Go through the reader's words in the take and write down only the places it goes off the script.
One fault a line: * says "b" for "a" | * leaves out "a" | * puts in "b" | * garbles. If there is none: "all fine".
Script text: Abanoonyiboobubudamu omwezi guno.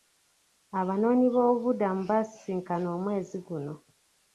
* puts in "baasisinkana"